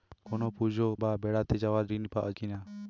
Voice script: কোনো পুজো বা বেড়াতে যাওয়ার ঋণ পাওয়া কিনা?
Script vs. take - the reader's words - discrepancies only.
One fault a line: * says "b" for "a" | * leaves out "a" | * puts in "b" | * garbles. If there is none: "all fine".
all fine